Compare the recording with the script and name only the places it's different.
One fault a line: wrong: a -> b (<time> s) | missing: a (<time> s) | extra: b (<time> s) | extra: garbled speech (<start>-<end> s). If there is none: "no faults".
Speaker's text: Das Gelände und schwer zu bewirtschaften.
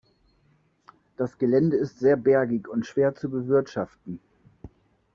extra: ist sehr bergig (1.8 s)